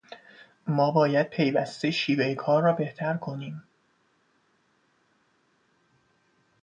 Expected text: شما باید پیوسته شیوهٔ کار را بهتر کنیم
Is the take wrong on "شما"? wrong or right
wrong